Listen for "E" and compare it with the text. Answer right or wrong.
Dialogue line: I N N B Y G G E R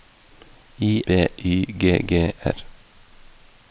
wrong